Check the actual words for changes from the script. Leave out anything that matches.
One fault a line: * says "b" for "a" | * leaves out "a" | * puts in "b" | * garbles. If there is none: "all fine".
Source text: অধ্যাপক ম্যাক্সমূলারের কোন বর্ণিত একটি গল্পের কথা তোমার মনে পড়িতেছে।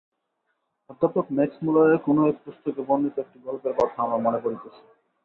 * puts in "এক পুস্তকে"
* says "আমার" for "তোমার"